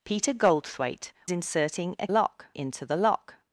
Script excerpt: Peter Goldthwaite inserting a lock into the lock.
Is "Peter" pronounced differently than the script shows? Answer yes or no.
no